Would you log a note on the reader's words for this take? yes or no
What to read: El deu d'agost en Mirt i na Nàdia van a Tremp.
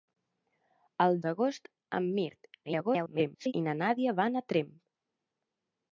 yes